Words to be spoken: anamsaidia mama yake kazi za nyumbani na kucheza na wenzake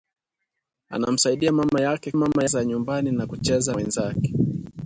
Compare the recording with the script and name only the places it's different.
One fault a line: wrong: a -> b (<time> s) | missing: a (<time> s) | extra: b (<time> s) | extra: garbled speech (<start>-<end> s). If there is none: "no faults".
wrong: kazi -> mama (2.1 s)
missing: na (3.8 s)